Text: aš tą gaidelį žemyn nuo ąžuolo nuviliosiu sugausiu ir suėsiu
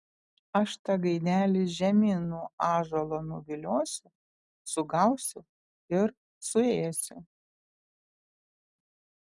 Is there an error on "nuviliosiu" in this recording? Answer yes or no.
no